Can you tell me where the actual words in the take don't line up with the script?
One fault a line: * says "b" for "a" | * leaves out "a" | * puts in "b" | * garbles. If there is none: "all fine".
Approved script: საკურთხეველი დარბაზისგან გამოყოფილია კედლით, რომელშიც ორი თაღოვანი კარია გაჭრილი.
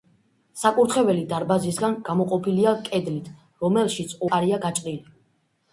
* leaves out "ორი თაღოვანი"